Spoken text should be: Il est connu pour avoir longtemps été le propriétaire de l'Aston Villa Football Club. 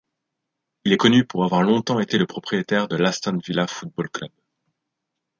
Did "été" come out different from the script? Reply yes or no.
no